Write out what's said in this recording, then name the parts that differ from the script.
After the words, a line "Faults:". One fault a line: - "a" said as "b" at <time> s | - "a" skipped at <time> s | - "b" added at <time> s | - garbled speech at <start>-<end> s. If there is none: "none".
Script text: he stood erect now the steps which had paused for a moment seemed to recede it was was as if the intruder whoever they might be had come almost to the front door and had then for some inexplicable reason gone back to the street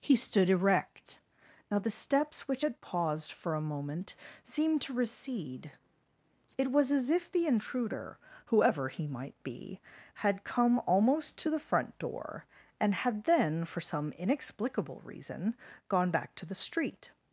he stood erect now the steps which had paused for a moment seemed to recede it was as if the intruder whoever he might be had come almost to the front door and had then for some inexplicable reason gone back to the street
Faults:
- "was" skipped at 6.9 s
- "they" said as "he" at 8.9 s